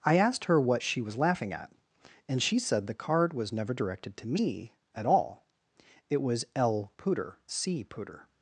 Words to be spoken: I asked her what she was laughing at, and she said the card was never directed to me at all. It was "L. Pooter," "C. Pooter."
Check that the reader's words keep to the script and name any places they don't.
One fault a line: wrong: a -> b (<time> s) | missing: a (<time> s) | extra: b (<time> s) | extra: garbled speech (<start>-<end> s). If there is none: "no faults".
no faults